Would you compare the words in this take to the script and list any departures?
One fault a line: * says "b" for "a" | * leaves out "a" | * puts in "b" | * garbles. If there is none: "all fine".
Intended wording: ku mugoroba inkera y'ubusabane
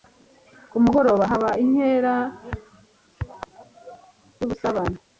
* puts in "haba"